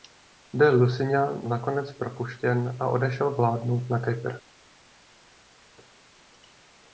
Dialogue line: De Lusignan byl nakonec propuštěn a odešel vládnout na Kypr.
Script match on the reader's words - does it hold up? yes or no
no